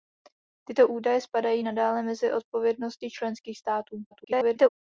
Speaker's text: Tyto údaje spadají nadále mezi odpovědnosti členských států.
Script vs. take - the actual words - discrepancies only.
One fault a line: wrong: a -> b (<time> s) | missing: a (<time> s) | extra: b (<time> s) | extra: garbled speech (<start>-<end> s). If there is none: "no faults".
extra: garbled speech (4.1-4.7 s)